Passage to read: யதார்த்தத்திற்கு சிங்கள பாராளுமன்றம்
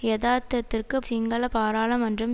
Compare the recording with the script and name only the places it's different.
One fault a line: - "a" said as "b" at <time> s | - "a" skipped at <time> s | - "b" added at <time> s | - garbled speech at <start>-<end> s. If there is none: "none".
none